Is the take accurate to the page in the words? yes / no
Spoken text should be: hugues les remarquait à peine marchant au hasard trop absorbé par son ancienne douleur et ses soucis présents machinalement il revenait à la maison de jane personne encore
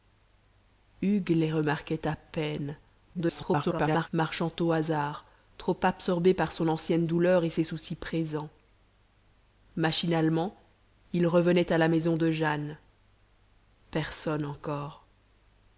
no